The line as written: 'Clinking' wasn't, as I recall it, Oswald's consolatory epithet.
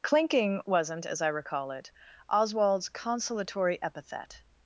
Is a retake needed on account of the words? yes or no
no